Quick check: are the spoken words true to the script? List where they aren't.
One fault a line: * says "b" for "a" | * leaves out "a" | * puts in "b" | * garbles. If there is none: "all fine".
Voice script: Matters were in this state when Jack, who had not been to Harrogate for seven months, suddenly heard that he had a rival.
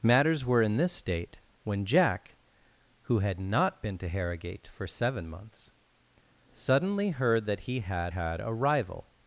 * puts in "had"